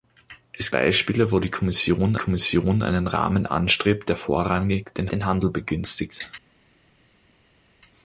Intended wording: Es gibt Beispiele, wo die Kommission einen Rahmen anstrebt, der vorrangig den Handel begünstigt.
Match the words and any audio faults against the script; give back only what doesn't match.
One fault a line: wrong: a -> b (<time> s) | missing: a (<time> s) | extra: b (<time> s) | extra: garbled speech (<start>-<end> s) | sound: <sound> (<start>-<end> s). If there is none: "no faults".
missing: gibt (0.7 s)
extra: Kommission (2.2 s)
extra: den (5.1 s)